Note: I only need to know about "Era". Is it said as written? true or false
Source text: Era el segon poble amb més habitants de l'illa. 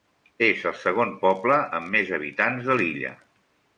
false